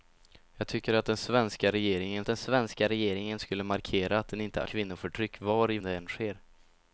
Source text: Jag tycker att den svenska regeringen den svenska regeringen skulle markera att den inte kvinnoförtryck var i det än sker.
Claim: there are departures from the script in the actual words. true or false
false